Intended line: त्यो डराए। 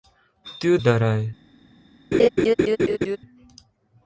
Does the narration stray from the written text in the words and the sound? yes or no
yes